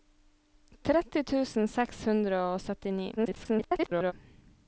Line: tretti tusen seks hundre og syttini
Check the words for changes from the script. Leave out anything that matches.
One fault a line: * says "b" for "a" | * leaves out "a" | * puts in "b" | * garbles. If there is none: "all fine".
* garbles